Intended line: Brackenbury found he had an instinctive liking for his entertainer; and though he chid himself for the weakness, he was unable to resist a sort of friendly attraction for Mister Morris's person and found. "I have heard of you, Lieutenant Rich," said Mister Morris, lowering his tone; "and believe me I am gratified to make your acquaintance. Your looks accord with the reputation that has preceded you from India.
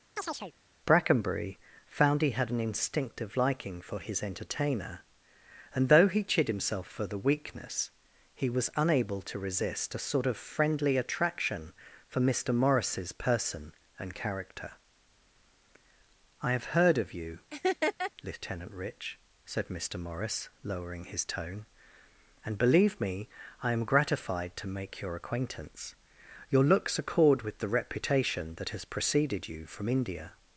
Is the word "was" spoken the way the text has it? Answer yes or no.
yes